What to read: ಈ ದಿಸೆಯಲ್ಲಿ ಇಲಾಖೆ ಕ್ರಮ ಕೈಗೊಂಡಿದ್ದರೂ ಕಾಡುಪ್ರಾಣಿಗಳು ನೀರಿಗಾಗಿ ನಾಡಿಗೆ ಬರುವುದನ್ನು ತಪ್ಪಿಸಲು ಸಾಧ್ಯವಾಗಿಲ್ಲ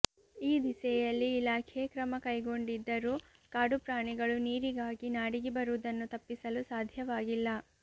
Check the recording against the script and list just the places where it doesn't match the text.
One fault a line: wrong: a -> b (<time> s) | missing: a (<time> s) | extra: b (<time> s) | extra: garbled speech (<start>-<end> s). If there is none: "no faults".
no faults